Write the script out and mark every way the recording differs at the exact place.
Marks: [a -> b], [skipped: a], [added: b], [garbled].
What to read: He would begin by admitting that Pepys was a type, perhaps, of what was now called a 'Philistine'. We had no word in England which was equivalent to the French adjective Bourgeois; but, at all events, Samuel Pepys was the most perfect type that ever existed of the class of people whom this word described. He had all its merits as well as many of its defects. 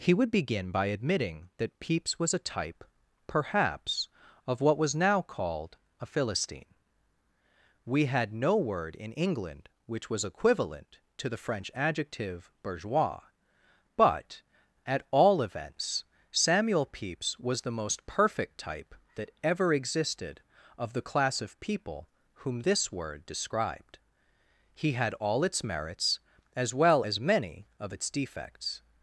He would begin by admitting that Pepys was a type, perhaps, of what was now called a 'Philistine'. We had no word in England which was equivalent to the French adjective Bourgeois; but, at all events, Samuel Pepys was the most perfect type that ever existed of the class of people whom this word described. He had all its merits as well as many of its defects.